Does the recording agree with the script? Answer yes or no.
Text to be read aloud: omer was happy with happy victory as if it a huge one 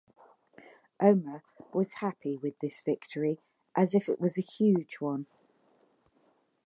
no